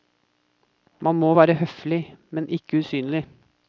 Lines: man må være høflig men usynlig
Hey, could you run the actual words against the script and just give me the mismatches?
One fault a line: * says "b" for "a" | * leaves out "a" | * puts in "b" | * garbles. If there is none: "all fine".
* puts in "ikke"